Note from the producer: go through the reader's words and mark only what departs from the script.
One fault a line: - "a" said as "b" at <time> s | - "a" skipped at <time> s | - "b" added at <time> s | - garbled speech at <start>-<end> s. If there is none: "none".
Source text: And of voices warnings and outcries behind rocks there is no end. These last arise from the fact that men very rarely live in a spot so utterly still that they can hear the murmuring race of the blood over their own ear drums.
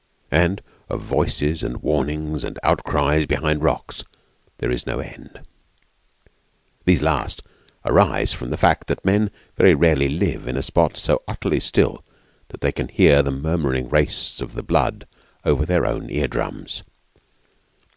- "and" added at 1.6 s